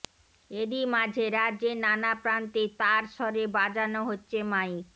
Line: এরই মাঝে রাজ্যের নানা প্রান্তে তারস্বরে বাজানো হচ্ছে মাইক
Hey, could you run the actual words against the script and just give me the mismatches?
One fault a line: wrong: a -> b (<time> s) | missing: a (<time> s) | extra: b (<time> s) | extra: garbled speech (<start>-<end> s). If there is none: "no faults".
no faults